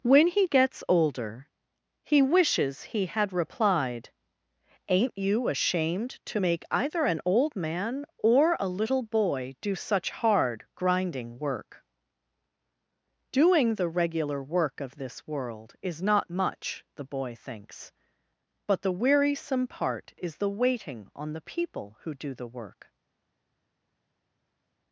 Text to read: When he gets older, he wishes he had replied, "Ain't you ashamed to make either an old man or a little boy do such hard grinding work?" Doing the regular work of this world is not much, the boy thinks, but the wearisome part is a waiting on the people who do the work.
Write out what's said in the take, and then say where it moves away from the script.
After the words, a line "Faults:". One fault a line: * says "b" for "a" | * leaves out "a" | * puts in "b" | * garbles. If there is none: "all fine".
When he gets older, he wishes he had replied, "Ain't you ashamed to make either an old man or a little boy do such hard grinding work?" Doing the regular work of this world is not much, the boy thinks, but the wearisome part is the waiting on the people who do the work.
Faults:
* says "the" for "a"